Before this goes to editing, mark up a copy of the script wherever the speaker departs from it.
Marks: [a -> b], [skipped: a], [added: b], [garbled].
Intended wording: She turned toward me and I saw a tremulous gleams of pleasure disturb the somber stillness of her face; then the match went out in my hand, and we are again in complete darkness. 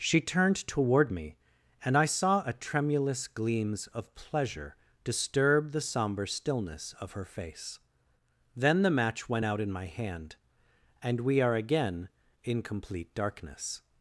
She turned toward me and I saw a tremulous gleams of pleasure disturb the somber stillness of her face; then the match went out in my hand, and we are again in complete darkness.